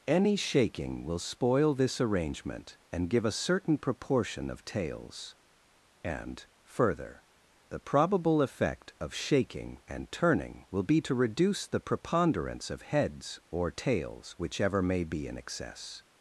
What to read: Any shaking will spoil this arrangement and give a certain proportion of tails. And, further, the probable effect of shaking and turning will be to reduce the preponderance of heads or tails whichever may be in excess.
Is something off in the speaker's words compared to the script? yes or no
no